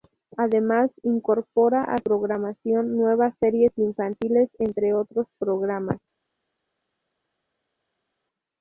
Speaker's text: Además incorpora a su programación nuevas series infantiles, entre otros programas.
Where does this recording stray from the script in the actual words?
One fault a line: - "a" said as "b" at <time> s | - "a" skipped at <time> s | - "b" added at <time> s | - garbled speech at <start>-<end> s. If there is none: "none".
- "su" skipped at 1.9 s